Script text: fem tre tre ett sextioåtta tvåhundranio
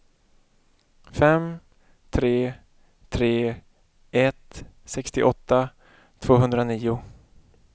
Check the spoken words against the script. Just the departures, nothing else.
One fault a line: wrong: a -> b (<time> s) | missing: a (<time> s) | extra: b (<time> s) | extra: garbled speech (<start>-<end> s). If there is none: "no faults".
no faults